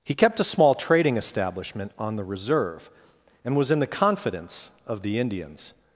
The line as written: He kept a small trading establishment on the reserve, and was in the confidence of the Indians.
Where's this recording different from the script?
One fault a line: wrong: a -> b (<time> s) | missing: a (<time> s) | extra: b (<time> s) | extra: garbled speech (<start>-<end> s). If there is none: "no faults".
no faults